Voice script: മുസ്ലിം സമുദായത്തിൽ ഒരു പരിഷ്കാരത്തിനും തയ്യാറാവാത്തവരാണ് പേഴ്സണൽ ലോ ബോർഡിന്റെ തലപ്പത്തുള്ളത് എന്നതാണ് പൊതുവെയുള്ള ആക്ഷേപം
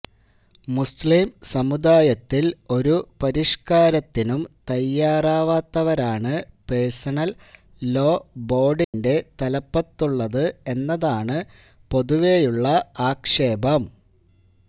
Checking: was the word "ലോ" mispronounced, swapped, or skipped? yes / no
no